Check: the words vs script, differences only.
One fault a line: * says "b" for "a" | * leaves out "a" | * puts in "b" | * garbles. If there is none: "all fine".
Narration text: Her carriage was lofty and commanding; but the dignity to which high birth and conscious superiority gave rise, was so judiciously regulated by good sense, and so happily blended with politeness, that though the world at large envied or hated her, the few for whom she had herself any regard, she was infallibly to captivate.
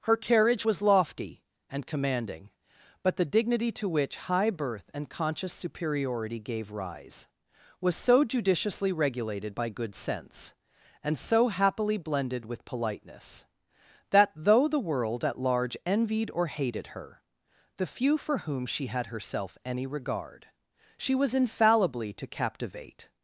all fine